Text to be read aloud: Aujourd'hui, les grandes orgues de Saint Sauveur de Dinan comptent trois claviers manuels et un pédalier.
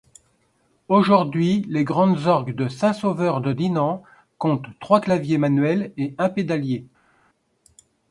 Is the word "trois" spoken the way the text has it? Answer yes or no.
yes